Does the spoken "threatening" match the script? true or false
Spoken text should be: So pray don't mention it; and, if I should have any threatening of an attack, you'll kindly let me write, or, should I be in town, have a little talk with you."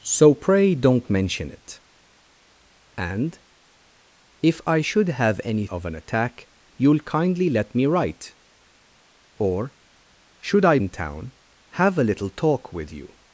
false